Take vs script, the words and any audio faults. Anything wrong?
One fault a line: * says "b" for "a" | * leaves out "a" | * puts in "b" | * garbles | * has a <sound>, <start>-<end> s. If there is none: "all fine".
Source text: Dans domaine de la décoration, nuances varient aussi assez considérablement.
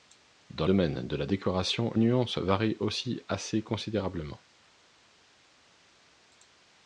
all fine